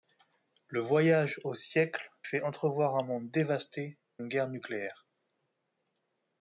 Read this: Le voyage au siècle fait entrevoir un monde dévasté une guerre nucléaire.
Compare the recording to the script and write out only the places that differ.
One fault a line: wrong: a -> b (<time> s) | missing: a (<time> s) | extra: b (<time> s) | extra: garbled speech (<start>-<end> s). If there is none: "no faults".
no faults